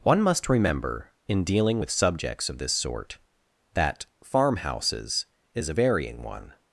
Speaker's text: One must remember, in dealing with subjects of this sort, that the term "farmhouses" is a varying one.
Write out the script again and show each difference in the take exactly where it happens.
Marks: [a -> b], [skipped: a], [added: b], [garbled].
One must remember, in dealing with subjects of this sort, that [skipped: the term] "farmhouses" is a varying one.